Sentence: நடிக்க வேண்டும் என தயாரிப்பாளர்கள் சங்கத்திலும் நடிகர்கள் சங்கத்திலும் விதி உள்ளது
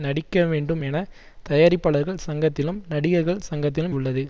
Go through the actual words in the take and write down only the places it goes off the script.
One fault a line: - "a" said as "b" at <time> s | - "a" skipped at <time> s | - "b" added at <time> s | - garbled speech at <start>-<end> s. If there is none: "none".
- "விதி" skipped at 3.9 s